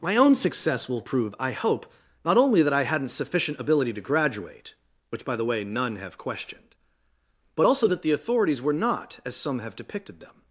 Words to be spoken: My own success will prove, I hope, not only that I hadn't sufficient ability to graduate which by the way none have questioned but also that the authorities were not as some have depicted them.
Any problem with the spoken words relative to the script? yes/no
no